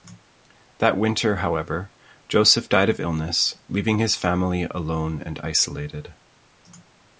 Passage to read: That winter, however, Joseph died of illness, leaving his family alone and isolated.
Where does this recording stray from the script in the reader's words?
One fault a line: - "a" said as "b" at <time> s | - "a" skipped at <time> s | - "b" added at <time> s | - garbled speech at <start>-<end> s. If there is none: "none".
none